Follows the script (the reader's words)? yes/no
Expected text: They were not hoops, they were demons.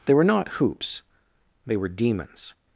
yes